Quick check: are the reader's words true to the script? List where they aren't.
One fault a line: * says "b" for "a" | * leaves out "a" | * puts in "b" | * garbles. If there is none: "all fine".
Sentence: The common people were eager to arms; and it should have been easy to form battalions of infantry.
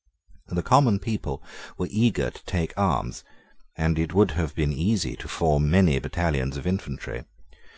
* puts in "take"
* says "would" for "should"
* puts in "many"